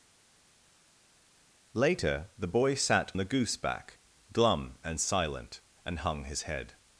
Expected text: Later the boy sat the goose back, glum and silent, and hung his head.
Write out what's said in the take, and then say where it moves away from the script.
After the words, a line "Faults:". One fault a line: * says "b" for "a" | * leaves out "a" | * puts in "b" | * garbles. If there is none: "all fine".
Later the boy sat the goose back, glum and silent, and hung his head.
Faults:
all fine